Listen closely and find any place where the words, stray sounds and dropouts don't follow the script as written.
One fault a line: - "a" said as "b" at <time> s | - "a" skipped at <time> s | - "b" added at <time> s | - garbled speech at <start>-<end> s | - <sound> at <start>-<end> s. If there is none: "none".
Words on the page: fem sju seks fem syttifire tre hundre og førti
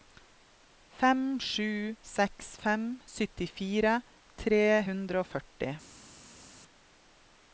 none